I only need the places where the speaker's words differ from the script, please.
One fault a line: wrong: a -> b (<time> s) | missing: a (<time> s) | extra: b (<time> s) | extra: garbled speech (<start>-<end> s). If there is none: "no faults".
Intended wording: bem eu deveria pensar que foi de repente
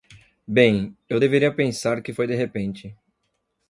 no faults